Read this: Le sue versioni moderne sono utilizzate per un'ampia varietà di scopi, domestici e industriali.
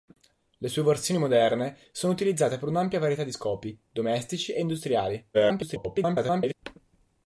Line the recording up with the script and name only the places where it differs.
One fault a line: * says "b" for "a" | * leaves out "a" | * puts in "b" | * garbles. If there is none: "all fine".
* garbles